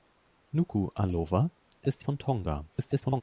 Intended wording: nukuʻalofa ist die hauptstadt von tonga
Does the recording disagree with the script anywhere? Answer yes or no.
yes